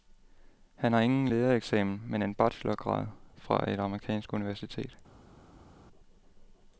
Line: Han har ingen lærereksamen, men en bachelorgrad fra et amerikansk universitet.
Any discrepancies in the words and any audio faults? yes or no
no